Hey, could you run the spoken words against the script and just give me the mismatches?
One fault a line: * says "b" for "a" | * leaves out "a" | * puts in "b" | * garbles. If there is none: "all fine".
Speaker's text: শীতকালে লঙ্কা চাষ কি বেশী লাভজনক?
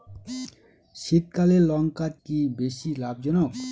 * leaves out "চাষ"